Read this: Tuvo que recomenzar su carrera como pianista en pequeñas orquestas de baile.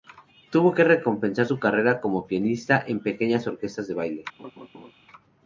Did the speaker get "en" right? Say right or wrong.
right